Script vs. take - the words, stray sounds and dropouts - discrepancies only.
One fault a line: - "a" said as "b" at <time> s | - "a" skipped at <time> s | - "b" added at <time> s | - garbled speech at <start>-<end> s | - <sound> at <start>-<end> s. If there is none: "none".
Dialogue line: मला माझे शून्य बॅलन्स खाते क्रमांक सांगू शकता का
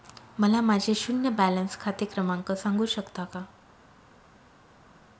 none